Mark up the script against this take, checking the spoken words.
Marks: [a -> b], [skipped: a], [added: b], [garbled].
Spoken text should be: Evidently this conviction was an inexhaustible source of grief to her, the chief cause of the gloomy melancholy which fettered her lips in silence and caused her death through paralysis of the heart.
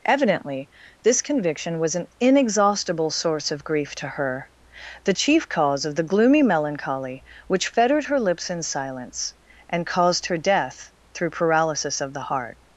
Evidently this conviction was an inexhaustible source of grief to her, the chief cause of the gloomy melancholy which fettered her lips in silence and caused her death through paralysis of the heart.